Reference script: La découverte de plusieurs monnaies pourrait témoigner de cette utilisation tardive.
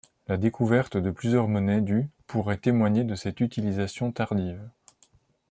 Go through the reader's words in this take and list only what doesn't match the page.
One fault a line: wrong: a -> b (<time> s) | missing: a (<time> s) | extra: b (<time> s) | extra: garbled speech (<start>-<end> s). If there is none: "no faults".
extra: du (1.8 s)